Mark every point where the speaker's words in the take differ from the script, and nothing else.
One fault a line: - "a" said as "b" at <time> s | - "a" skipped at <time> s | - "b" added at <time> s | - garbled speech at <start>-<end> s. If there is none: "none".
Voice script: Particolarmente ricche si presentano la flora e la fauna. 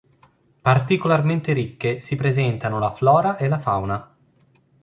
none